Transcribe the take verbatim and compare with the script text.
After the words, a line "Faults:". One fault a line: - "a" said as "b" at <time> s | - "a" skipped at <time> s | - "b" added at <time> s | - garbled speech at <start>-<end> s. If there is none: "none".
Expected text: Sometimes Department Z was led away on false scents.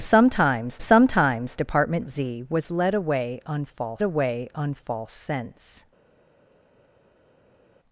Sometimes sometimes Department Z was led away on false away on false scents.
Faults:
- "sometimes" added at 0.8 s
- "away on false" added at 4.0 s